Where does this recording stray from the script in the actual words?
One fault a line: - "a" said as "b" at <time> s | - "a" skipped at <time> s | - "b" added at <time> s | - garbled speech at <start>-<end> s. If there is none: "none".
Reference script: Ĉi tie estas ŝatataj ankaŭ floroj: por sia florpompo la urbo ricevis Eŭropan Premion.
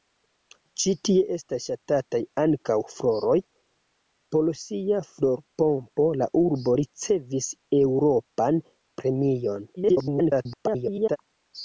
- garbled speech at 9.8-11.2 s